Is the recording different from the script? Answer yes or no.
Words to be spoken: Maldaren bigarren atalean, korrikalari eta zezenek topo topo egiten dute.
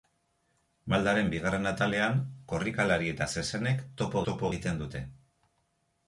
no